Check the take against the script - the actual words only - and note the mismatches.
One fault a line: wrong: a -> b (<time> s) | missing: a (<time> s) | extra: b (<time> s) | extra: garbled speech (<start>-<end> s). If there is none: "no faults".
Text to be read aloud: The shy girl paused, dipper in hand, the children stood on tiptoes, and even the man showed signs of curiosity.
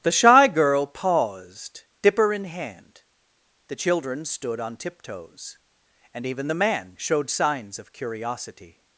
no faults